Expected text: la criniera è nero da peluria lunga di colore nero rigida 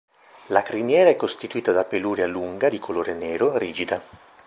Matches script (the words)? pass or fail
fail